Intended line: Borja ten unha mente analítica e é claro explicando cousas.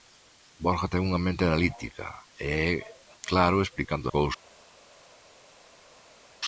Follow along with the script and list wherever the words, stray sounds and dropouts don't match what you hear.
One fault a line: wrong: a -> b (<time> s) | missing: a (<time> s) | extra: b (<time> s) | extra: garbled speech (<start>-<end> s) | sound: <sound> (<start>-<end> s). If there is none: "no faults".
no faults